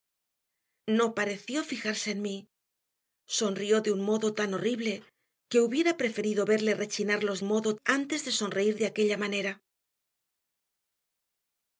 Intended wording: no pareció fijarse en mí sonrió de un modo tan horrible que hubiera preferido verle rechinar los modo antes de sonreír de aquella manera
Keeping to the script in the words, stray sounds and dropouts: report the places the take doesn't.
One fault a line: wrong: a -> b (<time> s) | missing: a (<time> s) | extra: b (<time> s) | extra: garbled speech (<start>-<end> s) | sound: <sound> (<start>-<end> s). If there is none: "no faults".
no faults